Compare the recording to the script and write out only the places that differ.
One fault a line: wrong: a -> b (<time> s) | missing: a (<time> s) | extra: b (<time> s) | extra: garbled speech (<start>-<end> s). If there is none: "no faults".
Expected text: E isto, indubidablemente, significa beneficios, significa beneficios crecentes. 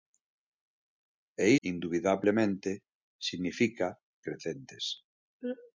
missing: isto (1.5 s)
missing: beneficios significa beneficios (4.0 s)